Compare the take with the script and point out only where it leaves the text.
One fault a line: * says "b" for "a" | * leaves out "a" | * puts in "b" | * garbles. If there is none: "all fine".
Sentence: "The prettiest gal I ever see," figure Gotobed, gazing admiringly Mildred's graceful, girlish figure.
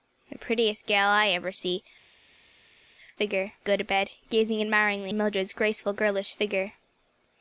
all fine